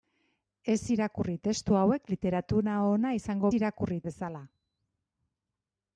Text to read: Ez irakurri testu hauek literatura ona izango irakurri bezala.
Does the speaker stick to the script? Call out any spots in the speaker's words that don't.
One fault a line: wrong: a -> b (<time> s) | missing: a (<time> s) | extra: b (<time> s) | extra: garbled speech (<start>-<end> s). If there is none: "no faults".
no faults